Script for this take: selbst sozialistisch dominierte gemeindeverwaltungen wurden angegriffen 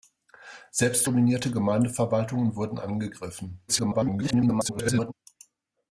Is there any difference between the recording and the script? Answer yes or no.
yes